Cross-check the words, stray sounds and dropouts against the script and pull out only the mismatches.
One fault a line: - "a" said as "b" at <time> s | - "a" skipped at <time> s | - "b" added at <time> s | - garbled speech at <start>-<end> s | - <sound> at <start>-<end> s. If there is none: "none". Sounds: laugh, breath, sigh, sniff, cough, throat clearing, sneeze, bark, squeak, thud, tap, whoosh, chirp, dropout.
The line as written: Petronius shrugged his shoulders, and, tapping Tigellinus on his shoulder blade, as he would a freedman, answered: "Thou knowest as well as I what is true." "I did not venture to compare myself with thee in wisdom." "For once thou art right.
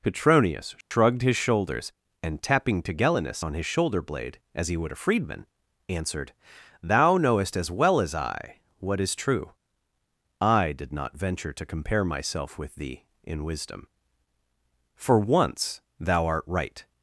- dropout at 0.8-0.9 s